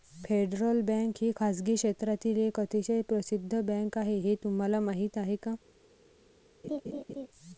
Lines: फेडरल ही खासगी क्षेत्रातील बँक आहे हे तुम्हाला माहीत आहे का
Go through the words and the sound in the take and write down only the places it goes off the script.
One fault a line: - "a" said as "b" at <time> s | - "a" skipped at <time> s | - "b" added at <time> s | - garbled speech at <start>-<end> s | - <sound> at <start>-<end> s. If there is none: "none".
- "बँक" added at 0.8 s
- "एक अतिशय प्रसिद्ध" added at 2.4 s
- laugh at 6.6-7.3 s